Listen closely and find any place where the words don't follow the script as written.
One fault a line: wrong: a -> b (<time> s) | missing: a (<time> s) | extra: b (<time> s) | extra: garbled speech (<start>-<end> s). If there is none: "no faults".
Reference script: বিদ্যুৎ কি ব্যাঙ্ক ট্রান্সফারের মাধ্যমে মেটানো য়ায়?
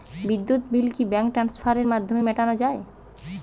extra: বিল (0.7 s)